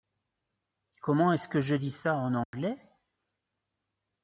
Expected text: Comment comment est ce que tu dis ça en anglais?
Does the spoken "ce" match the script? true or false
true